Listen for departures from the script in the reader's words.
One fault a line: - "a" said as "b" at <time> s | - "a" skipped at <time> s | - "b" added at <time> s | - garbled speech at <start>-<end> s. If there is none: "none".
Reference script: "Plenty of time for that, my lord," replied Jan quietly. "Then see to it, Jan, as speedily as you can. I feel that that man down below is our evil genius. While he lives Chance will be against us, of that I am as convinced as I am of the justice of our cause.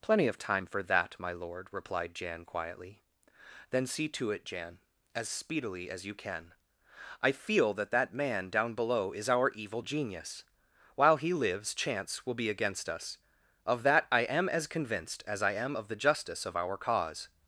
none